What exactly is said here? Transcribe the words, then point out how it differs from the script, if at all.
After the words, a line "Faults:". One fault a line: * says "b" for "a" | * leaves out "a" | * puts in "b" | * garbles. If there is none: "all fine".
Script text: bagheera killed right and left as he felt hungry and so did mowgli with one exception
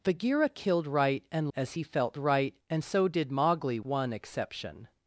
bagheera killed right and as he felt right and so did mowgli one exception
Faults:
* leaves out "left"
* says "right" for "hungry"
* leaves out "with"